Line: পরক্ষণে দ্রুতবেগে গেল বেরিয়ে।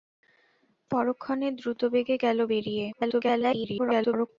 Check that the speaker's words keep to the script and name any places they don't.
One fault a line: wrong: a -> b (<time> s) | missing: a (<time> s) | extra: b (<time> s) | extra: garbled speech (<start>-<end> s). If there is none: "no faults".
extra: garbled speech (2.9-4.3 s)